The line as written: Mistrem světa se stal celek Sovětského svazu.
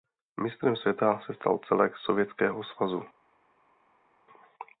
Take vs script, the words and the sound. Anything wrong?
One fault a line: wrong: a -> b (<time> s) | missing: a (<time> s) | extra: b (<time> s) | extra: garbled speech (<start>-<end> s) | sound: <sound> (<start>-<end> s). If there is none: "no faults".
no faults